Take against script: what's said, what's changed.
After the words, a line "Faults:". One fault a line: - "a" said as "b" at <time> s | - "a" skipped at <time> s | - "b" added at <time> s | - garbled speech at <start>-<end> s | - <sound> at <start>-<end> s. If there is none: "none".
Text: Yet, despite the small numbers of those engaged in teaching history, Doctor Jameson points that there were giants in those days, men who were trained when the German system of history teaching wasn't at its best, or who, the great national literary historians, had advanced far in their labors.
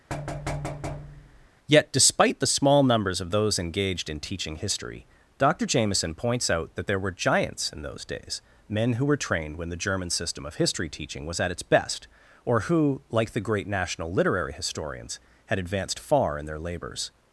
Yet, despite the small numbers of those engaged in teaching history, Doctor Jameson points out that there were giants in those days, men who were trained when the German system of history teaching was at its best, or who, like the great national literary historians, had advanced far in their labors.
Faults:
- thud at 0.1-1.5 s
- "out" added at 6.5 s
- "wasn't" said as "was" at 11.2 s
- "like" added at 13.1 s